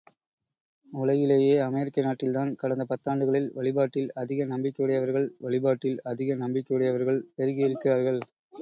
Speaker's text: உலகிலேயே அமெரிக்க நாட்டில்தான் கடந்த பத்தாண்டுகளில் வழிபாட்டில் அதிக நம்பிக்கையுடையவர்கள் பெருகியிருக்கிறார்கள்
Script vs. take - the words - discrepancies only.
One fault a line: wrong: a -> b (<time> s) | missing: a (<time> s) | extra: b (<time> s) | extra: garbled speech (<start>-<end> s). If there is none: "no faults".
extra: வழிபாட்டில் அதிக நம்பிக்கையுடையவர்கள் (5.4 s)